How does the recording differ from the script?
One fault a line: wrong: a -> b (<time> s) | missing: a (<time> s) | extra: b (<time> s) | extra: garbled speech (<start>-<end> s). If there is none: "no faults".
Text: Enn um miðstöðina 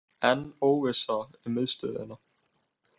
extra: óvissa (0.7 s)